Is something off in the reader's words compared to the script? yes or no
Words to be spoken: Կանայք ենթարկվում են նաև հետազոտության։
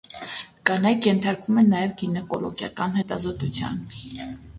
yes